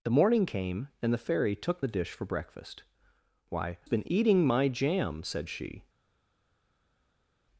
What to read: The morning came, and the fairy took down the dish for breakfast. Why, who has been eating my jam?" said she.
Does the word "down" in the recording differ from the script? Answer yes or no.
yes